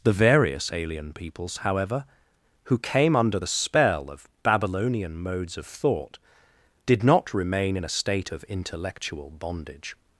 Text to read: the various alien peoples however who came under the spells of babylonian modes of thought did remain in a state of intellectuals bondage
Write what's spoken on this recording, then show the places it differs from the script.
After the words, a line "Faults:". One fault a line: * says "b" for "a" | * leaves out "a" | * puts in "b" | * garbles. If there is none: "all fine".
the various alien peoples however who came under the spell of babylonian modes of thought did not remain in a state of intellectual bondage
Faults:
* says "spell" for "spells"
* puts in "not"
* says "intellectual" for "intellectuals"